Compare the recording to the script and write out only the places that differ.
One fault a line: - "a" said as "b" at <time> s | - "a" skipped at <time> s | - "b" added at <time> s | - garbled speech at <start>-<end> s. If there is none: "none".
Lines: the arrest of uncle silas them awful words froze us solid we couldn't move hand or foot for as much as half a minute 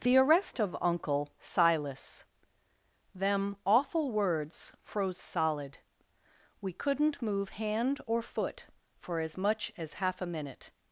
- "us" skipped at 5.2 s